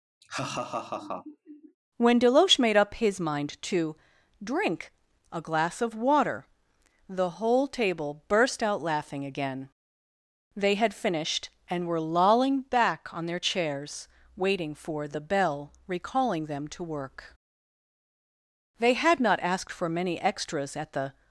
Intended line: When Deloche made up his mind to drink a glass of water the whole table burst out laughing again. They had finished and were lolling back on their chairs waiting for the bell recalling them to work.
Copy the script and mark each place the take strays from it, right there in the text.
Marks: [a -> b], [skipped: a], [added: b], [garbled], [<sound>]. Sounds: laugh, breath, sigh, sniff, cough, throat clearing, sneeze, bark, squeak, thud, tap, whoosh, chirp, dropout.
[laugh] When Deloche made up his mind to drink a glass of water the whole table burst out laughing again. They had finished and were lolling back on their chairs waiting for the bell recalling them to work. [added: They had not asked for many extras at the]